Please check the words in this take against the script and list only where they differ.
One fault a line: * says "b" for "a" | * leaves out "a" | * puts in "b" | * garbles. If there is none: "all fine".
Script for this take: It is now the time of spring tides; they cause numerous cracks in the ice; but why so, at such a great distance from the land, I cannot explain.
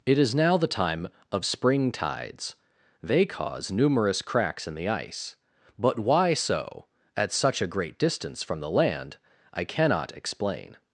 all fine